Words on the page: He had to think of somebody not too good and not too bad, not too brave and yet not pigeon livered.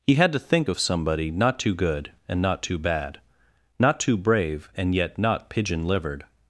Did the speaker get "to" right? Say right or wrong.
right